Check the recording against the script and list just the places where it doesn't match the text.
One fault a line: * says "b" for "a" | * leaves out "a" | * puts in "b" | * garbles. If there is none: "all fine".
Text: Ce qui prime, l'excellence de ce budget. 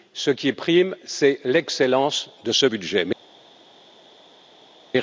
* puts in "c'est"